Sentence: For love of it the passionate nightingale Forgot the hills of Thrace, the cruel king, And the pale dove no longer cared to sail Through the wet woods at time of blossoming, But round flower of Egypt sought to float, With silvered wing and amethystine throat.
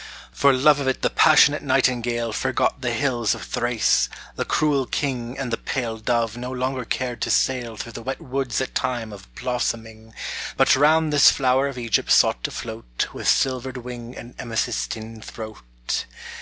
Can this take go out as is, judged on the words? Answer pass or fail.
fail